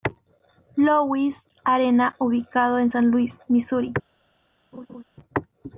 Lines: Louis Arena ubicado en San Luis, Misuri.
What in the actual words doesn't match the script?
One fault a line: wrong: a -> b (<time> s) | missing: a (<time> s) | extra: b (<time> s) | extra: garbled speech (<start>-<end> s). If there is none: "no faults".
no faults